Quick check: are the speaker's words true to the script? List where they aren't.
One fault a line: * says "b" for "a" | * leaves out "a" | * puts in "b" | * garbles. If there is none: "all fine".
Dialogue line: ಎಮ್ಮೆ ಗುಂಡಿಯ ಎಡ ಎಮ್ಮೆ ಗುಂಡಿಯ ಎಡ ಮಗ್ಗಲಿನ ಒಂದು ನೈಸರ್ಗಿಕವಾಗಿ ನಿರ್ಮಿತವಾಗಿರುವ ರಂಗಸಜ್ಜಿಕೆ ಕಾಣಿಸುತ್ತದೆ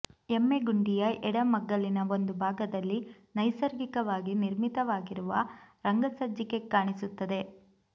* leaves out "ಎಮ್ಮೆ ಗುಂಡಿಯ ಎಡ"
* puts in "ಭಾಗದಲ್ಲಿ"